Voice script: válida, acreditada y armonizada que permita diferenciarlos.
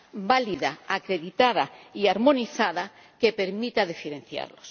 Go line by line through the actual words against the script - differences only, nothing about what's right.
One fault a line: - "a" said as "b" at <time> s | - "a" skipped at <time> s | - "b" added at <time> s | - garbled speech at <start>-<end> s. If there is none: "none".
none